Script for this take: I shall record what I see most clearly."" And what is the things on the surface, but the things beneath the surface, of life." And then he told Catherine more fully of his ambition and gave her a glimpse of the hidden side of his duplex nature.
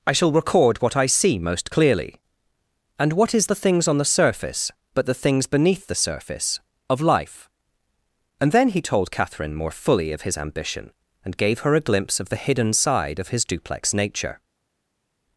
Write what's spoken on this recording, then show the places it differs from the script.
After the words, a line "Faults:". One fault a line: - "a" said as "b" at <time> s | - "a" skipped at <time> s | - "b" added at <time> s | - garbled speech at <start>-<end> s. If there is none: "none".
I shall record what I see most clearly."" And what is the things on the surface, but the things beneath the surface, of life." And then he told Catherine more fully of his ambition and gave her a glimpse of the hidden side of his duplex nature.
Faults:
none